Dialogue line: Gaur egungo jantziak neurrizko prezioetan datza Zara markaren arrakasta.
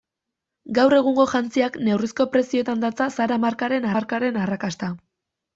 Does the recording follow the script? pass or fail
fail